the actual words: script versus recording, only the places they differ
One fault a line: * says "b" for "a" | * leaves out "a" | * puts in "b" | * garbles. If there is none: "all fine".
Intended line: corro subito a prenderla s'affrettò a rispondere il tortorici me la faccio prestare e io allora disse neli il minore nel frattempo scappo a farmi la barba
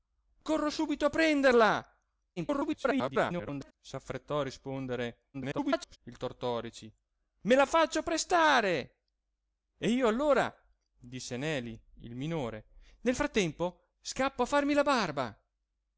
* garbles
* garbles